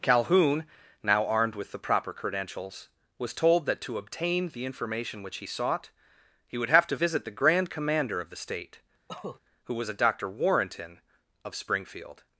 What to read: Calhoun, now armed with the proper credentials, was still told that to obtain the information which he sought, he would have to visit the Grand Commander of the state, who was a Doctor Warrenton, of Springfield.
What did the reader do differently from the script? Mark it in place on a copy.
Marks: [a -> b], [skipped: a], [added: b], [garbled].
Calhoun, now armed with the proper credentials, was [skipped: still] told that to obtain the information which he sought, he would have to visit the Grand Commander of the state, who was a Doctor Warrenton, of Springfield.